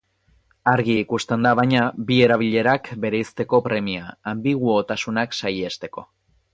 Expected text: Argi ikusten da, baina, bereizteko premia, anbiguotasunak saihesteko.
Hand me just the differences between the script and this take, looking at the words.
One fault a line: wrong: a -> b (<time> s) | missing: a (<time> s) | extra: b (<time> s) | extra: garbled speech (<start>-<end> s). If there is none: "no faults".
extra: bi erabilerak (2.1 s)